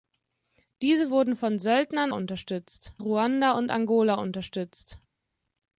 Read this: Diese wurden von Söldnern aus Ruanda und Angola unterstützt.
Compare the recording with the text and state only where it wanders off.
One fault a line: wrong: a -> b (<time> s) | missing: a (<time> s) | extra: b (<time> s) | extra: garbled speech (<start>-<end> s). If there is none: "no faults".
wrong: aus -> unterstützt (2.1 s)